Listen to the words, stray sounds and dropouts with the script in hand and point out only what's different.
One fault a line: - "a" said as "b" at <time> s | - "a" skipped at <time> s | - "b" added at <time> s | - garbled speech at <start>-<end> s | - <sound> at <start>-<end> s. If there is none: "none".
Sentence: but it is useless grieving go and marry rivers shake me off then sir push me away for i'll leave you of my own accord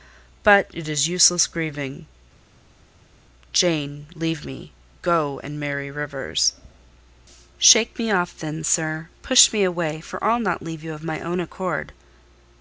- "jane leave me" added at 3.5 s
- "not" added at 10.4 s